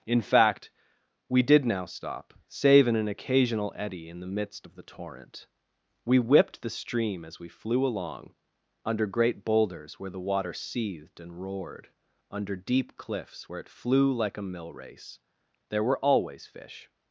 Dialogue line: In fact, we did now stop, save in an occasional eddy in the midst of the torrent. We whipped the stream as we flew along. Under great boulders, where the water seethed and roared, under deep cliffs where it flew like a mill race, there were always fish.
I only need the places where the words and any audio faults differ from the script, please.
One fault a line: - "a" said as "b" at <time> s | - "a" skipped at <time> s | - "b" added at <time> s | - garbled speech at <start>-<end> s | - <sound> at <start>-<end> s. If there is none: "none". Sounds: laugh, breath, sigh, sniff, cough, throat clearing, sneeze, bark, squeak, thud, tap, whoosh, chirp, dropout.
none